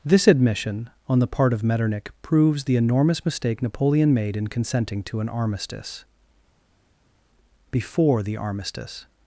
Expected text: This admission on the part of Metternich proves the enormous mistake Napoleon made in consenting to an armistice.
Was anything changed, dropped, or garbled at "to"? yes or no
no